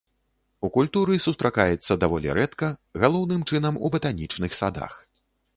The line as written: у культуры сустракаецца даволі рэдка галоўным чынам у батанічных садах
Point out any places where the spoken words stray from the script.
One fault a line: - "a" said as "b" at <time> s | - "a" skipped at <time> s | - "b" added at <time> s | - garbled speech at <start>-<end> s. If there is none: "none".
none